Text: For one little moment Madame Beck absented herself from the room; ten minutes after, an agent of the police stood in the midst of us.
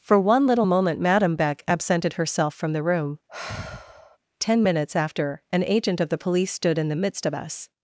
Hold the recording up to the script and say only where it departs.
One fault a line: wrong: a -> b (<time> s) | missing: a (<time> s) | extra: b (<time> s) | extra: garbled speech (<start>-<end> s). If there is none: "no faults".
no faults